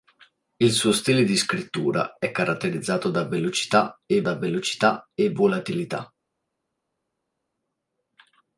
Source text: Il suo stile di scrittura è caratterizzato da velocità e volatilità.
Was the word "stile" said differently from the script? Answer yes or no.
no